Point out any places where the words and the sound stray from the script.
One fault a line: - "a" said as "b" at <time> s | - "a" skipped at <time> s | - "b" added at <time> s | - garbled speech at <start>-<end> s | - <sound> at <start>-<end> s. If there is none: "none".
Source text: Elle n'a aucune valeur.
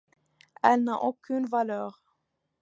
none